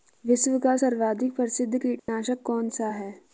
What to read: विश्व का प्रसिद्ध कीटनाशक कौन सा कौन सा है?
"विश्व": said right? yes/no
yes